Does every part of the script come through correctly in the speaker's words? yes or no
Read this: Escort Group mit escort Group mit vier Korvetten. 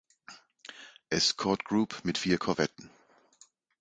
no